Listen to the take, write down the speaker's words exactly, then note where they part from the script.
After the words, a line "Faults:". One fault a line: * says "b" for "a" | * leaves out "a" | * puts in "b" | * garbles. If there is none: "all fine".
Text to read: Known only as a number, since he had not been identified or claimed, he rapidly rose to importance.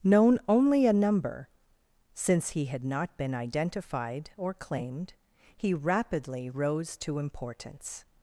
Known only a number, since he had not been identified or claimed, he rapidly rose to importance.
Faults:
* leaves out "as"